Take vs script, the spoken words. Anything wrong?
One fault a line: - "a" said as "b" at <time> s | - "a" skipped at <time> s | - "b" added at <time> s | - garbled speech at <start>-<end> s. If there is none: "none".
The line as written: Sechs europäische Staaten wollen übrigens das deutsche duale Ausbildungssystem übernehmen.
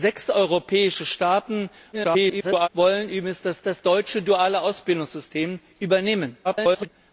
- garbled speech at 1.9-2.7 s
- "das" added at 3.6 s
- garbled speech at 6.4-6.9 s